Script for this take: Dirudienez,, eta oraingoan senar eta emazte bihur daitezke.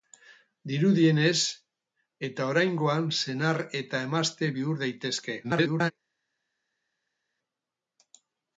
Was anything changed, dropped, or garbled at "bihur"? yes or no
no